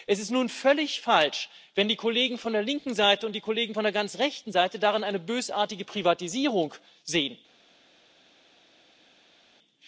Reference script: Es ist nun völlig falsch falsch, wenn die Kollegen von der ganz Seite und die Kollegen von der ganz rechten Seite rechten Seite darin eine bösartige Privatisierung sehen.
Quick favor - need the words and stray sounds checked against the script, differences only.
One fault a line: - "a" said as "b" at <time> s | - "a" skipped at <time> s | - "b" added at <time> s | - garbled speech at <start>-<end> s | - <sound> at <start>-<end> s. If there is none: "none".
- "falsch" skipped at 1.5 s
- "ganz" said as "linken" at 2.6 s
- "rechten Seite" skipped at 4.8 s